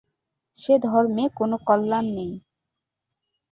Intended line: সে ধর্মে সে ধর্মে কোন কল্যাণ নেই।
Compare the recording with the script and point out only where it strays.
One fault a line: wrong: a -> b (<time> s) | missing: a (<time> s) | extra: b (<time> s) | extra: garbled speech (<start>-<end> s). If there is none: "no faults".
missing: সে ধর্মে (1.2 s)